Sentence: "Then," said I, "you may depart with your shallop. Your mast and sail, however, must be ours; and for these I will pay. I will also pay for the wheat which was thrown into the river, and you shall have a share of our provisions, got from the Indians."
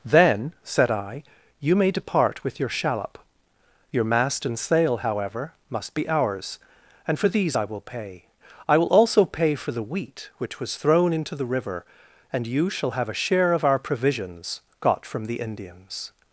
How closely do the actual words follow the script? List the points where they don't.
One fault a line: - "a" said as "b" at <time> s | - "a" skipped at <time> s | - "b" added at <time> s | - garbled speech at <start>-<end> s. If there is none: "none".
none